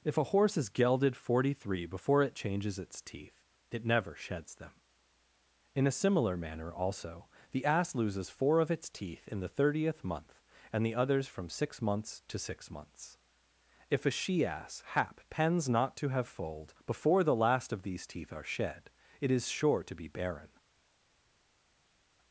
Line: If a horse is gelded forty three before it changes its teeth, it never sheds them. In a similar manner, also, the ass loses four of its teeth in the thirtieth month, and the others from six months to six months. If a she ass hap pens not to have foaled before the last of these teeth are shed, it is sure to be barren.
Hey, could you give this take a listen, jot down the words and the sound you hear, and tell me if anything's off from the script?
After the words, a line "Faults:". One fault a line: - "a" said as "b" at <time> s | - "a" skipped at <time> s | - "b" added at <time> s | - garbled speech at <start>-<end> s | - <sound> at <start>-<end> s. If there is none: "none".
If a horse is gelded forty three before it changes its teeth, it never sheds them. In a similar manner, also, the ass loses four of its teeth in the thirtieth month, and the others from six months to six months. If a she ass hap pens not to have foaled before the last of these teeth are shed, it is sure to be barren.
Faults:
none